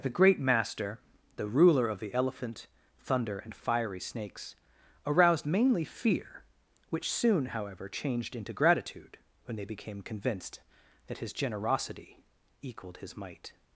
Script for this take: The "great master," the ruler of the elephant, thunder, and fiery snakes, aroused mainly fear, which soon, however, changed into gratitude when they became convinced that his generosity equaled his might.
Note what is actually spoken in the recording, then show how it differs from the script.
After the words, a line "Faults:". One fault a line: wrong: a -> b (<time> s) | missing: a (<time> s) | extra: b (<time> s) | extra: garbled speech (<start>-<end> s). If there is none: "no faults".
The "great master," the ruler of the elephant, thunder, and fiery snakes, aroused mainly fear, which soon, however, changed into gratitude when they became convinced that his generosity equaled his might.
Faults:
no faults